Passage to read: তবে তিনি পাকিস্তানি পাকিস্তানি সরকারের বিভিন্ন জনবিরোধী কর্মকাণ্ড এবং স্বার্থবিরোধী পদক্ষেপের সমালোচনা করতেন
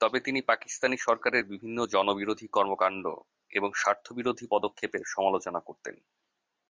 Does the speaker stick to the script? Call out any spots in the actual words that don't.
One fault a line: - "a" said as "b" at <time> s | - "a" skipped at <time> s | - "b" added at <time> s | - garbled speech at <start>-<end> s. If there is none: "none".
- "পাকিস্তানি" skipped at 1.0 s